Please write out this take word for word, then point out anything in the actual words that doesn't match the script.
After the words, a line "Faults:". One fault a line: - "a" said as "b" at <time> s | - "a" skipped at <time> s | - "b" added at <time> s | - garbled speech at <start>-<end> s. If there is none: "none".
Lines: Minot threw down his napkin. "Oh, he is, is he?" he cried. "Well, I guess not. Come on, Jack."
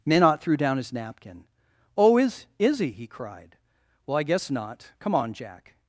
Minot threw down his napkin. "Oh, is, is he?" he cried. "Well, I guess not. Come on, Jack."
Faults:
- "he" skipped at 2.2 s